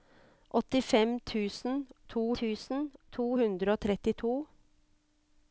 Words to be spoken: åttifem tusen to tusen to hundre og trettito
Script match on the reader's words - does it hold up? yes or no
yes